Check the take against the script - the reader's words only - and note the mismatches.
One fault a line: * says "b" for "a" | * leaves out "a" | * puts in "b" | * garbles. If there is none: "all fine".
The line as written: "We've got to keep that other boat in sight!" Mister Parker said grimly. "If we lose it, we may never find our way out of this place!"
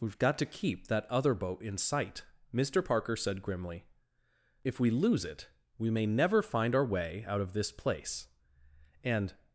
* puts in "And"